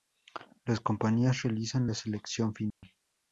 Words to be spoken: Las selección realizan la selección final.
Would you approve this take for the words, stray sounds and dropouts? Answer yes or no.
no